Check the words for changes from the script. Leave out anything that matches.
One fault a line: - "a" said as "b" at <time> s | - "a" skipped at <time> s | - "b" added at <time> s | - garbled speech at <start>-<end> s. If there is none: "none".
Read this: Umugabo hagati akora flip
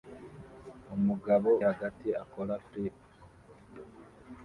none